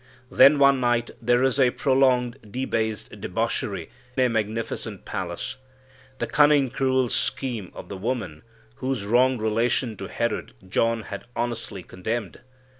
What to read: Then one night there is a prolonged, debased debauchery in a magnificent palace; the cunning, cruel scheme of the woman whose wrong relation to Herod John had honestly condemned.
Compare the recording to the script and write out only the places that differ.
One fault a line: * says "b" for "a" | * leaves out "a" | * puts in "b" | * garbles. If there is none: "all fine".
* leaves out "in"